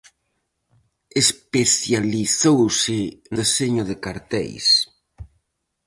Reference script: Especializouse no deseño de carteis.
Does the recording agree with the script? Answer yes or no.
no